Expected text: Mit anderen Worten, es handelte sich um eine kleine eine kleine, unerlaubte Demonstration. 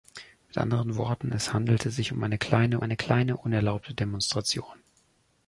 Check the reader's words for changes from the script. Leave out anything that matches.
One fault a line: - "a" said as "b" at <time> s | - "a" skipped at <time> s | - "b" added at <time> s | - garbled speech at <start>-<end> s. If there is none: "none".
none